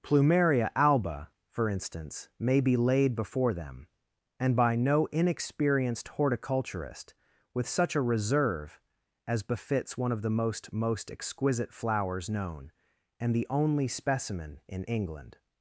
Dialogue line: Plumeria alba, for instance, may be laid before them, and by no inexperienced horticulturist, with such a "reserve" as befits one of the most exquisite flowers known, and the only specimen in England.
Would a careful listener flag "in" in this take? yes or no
no